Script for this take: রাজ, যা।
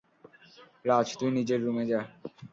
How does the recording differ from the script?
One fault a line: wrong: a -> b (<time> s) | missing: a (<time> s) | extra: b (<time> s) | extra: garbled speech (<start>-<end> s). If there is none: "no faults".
extra: তুই নিজের রুমে (1.2 s)